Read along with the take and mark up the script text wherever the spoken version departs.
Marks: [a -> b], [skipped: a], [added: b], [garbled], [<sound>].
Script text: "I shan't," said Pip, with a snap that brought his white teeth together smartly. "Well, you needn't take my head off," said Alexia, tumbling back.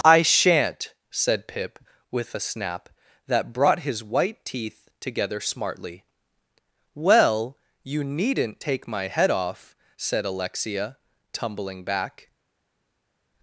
"I shan't," said Pip, with a snap that brought his white teeth together smartly. "Well, you needn't take my head off," said Alexia, tumbling back.